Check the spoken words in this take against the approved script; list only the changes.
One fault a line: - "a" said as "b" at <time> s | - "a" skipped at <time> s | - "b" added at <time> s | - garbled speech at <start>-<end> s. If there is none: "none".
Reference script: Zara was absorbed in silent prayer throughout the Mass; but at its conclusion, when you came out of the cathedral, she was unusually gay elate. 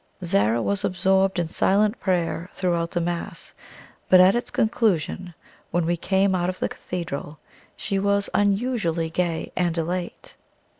- "you" said as "we" at 5.8 s
- "and" added at 9.6 s